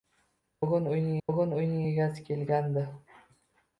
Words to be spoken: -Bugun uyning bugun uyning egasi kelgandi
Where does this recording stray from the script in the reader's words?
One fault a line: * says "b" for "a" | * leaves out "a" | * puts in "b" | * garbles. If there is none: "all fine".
all fine